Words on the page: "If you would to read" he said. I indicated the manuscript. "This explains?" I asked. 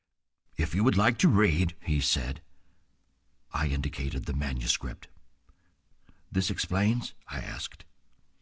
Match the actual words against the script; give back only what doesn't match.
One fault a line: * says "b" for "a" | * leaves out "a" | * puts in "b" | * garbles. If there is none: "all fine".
* puts in "like"